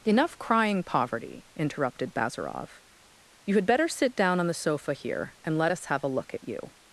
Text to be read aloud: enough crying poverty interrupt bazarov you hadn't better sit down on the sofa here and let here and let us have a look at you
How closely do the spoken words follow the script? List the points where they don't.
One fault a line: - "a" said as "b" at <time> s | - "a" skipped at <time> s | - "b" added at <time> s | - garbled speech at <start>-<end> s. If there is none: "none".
- "interrupt" said as "interrupted" at 1.6 s
- "hadn't" said as "had" at 3.5 s
- "here and let" skipped at 5.7 s